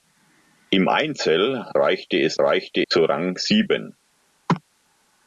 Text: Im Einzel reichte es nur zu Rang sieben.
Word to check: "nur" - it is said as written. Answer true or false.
false